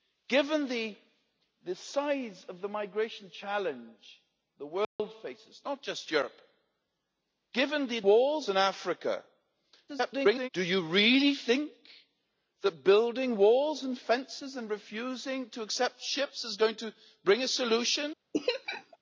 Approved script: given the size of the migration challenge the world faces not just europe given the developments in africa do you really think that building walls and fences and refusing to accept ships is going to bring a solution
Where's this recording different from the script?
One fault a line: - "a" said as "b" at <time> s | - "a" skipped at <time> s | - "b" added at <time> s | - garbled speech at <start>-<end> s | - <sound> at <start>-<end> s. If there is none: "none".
- dropout at 4.8-5.0 s
- "developments" said as "walls" at 8.0 s
- garbled speech at 9.9-10.5 s
- laugh at 18.3-19.0 s